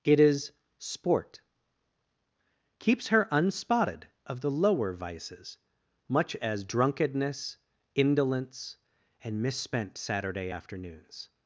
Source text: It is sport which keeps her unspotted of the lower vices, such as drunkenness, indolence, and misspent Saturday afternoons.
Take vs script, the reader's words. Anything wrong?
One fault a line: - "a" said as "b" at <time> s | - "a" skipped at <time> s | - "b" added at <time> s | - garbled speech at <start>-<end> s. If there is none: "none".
- "which" skipped at 1.4 s
- "such" said as "much" at 6.1 s